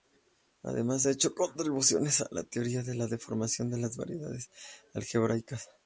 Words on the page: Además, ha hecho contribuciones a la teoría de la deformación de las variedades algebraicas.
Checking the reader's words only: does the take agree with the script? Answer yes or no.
yes